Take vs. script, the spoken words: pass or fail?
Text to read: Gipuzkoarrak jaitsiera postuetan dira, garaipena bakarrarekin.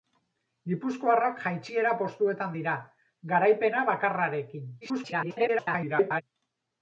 fail